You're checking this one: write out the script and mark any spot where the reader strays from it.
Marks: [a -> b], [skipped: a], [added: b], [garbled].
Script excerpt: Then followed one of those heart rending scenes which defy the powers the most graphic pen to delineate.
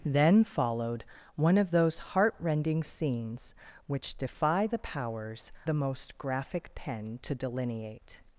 Then followed one of those heart rending scenes which defy the powers the most graphic pen to delineate.